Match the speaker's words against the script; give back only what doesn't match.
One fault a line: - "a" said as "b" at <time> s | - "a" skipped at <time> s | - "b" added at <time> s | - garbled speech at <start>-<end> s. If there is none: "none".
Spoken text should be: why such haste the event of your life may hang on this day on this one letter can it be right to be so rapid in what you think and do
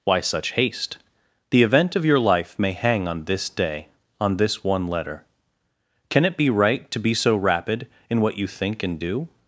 none